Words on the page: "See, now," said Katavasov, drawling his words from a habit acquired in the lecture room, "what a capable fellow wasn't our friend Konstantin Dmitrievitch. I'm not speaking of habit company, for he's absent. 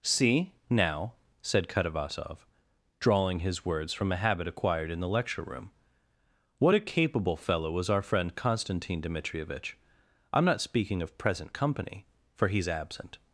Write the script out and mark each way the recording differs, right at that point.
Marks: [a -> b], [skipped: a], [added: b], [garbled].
"See, now," said Katavasov, drawling his words from a habit acquired in the lecture room, "what a capable fellow [wasn't -> was] our friend Konstantin Dmitrievitch. I'm not speaking of [habit -> present] company, for he's absent.